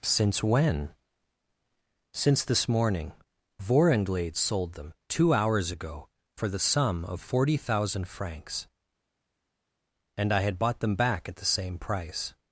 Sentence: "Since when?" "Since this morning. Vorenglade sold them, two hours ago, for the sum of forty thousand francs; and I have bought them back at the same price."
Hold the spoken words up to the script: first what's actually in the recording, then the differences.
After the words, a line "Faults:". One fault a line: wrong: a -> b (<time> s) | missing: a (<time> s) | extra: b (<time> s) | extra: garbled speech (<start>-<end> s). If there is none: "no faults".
"Since when?" "Since this morning. Vorenglade sold them, two hours ago, for the sum of forty thousand francs; and I had bought them back at the same price."
Faults:
wrong: have -> had (10.4 s)